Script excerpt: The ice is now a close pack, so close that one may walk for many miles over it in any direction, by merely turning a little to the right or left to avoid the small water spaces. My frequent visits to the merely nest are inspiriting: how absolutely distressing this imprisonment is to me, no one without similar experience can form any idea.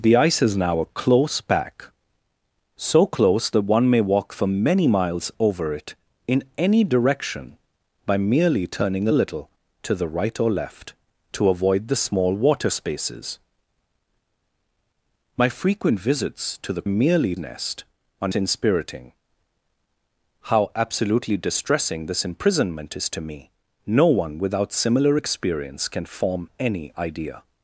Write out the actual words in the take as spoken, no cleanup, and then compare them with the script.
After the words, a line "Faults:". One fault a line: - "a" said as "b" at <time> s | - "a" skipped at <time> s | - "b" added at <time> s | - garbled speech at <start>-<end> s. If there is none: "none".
The ice is now a close pack, so close that one may walk for many miles over it in any direction, by merely turning a little to the right or left to avoid the small water spaces. My frequent visits to the merely nest are inspiriting: how absolutely distressing this imprisonment is to me, no one without similar experience can form any idea.
Faults:
none